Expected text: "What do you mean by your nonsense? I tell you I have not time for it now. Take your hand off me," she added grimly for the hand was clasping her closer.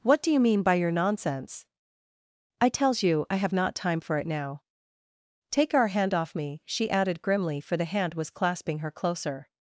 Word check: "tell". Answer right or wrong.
wrong